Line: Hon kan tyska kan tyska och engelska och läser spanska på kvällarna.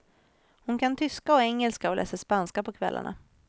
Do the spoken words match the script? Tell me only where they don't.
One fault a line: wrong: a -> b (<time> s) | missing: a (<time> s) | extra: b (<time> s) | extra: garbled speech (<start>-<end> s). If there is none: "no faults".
missing: kan tyska (1.3 s)